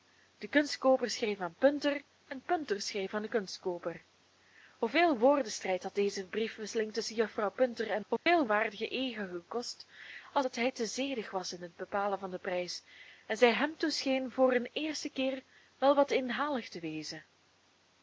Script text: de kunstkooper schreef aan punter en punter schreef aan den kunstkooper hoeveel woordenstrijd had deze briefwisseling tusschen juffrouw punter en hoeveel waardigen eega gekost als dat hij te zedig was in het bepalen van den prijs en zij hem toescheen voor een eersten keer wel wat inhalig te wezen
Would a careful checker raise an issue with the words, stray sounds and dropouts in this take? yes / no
yes